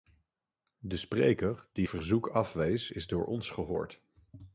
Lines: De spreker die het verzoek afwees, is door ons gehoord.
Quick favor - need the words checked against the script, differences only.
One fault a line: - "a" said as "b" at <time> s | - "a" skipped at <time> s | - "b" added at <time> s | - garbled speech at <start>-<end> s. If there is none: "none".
- "het" skipped at 1.9 s